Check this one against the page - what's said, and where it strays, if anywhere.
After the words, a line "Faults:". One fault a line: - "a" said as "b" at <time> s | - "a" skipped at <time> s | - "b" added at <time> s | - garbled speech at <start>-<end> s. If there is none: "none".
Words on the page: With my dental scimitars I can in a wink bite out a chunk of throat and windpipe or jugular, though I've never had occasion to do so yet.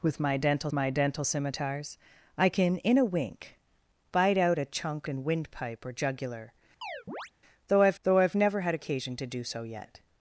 With my dental my dental scimitars I can in a wink bite out a chunk and windpipe or jugular, though I've though I've never had occasion to do so yet.
Faults:
- "my dental" added at 0.7 s
- "of throat" skipped at 5.1 s
- "though I've" added at 8.0 s